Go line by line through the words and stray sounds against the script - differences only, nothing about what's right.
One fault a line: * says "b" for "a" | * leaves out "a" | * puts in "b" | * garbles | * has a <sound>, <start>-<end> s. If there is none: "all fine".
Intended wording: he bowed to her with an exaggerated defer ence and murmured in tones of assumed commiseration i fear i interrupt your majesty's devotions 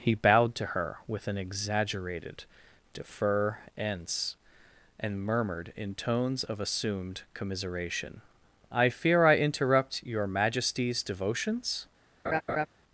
* has a laugh, 12.2-12.7 s